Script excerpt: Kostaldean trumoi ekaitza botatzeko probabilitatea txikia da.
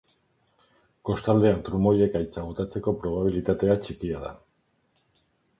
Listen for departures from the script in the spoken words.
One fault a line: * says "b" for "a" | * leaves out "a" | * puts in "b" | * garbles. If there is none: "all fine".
all fine